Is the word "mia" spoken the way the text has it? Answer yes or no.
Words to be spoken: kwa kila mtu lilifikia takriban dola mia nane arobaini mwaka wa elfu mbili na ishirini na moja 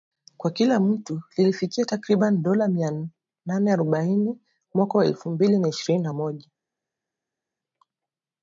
yes